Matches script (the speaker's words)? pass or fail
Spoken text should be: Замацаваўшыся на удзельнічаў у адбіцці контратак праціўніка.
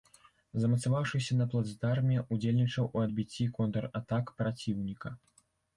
fail